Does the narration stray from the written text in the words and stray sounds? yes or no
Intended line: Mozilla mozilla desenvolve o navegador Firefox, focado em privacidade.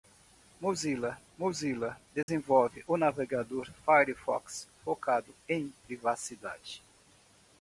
yes